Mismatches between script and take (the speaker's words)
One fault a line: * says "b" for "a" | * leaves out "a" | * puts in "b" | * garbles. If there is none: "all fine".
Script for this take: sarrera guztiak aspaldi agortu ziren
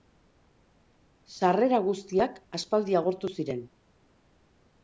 all fine